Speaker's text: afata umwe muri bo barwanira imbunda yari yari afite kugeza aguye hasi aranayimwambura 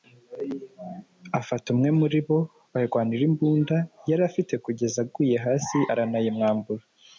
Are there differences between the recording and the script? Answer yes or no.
yes